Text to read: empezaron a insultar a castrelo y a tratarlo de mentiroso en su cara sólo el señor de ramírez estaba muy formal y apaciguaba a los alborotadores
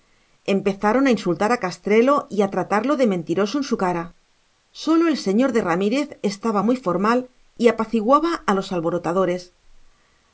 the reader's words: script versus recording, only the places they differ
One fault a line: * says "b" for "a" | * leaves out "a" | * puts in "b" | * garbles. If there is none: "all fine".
all fine